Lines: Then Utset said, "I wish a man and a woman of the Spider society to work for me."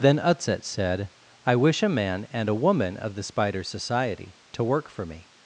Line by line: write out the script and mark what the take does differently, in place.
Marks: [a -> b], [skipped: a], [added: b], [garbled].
Then Utset said, "I wish a man and a woman of the Spider society to work for me."